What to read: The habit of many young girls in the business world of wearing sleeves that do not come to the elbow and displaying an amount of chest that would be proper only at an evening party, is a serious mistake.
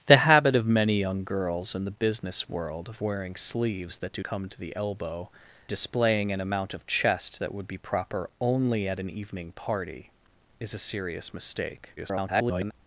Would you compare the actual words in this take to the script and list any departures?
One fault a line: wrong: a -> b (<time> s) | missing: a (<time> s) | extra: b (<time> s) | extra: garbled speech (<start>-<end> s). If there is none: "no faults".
missing: not (4.2 s)
missing: and (5.3 s)
extra: garbled speech (12.0-12.7 s)